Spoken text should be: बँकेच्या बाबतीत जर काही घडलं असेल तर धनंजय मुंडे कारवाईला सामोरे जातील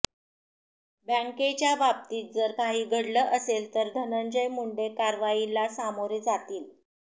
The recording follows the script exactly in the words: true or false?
true